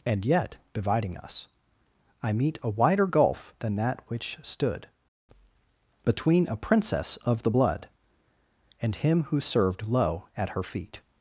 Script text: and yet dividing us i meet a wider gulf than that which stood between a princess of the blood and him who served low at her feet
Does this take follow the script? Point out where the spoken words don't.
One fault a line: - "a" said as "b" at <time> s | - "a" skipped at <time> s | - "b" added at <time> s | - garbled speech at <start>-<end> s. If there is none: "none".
none